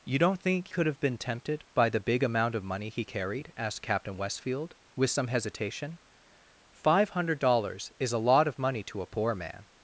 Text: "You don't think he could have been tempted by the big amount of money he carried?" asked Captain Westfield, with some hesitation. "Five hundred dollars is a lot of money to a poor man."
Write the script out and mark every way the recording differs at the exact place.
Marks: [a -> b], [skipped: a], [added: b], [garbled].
"You don't think [skipped: he] could have been tempted by the big amount of money he carried?" asked Captain Westfield, with some hesitation. "Five hundred dollars is a lot of money to a poor man."